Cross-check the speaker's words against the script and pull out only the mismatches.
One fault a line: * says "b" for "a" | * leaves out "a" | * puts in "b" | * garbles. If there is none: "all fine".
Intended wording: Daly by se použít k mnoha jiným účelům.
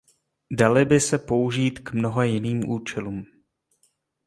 all fine